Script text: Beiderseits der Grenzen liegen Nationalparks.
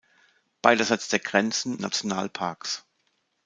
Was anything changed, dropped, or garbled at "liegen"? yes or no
yes